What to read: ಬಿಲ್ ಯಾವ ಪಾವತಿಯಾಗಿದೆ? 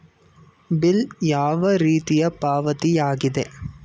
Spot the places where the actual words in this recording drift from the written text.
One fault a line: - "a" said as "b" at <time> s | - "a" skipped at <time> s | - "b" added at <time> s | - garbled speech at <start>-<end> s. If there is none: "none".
- "ರೀತಿಯ" added at 1.8 s